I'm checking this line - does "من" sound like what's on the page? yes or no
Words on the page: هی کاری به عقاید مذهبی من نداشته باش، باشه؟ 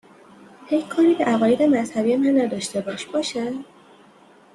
yes